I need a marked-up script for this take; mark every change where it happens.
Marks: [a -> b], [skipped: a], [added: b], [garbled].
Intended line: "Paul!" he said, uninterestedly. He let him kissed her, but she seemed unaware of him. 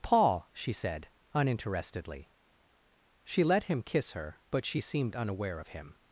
"Paul!" [he -> she] said, uninterestedly. [He -> She] let him [kissed -> kiss] her, but she seemed unaware of him.